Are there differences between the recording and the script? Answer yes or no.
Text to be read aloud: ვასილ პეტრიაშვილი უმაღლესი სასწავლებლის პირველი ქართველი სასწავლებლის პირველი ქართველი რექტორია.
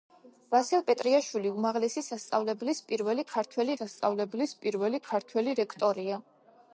no